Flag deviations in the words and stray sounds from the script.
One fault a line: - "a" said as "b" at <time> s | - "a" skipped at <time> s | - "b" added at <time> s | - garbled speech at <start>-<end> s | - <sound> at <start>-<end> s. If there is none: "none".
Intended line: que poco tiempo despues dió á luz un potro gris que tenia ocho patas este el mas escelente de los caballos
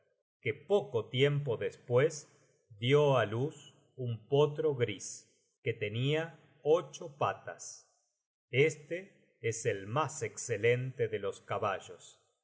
- "es" added at 9.4 s